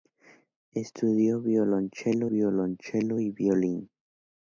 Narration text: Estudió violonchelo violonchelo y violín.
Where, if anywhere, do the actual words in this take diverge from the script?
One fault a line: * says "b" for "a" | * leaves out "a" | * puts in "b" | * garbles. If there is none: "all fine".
all fine